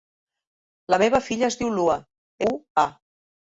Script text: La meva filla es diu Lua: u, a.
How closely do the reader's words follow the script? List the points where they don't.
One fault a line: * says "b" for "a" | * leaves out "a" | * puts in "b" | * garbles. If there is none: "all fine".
all fine